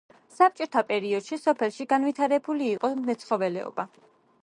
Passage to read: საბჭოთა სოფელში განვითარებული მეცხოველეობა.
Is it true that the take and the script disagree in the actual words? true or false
true